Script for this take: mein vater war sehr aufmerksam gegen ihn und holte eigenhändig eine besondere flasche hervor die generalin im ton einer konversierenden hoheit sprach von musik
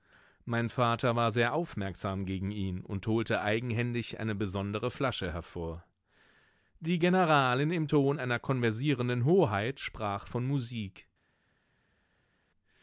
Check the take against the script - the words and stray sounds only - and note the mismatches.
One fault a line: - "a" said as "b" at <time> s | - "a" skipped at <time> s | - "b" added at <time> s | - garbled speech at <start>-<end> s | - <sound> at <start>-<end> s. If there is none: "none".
none